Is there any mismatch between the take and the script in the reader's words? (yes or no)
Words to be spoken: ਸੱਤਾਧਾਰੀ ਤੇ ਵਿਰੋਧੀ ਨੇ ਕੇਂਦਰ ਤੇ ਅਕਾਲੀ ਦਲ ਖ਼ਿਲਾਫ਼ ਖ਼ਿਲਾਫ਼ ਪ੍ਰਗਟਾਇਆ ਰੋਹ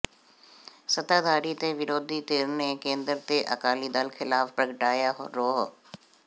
yes